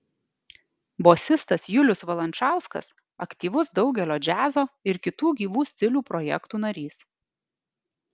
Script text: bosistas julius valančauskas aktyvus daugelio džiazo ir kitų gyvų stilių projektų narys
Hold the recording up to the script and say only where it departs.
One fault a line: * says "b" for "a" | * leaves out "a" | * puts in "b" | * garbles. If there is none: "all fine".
all fine